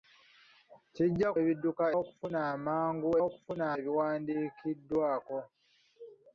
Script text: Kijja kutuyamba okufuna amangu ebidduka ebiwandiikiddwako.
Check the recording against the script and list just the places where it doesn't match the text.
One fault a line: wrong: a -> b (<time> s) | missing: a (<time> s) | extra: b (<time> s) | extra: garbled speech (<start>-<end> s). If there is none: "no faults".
wrong: kutuyamba -> ebidduka (1.4 s)
wrong: ebidduka -> okufuna (3.2 s)